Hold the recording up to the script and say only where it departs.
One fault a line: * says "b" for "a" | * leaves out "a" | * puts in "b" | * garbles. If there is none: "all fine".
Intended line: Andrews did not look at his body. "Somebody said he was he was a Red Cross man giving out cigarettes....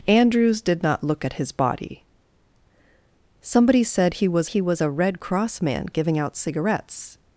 all fine